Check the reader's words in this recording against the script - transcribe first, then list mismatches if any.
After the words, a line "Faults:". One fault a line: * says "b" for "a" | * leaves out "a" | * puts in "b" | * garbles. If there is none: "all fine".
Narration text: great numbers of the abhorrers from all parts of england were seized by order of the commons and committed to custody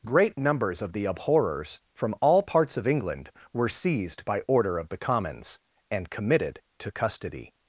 great numbers of the abhorrers from all parts of england were seized by order of the commons and committed to custody
Faults:
all fine